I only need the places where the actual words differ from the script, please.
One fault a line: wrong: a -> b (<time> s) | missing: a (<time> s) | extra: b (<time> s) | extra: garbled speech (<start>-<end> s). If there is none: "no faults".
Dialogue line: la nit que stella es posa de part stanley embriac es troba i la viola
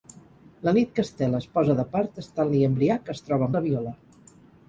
no faults